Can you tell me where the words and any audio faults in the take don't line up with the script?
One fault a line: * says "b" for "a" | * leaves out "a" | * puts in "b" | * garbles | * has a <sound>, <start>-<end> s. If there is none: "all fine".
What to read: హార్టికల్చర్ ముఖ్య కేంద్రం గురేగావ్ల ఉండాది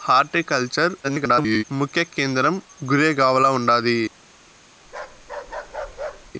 * garbles
* has a bark, 4.8-6.3 s